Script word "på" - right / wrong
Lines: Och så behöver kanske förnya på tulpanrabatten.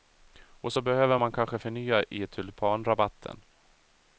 wrong